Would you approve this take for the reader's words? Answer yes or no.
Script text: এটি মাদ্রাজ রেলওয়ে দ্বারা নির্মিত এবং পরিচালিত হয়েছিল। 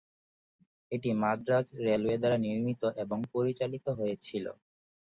yes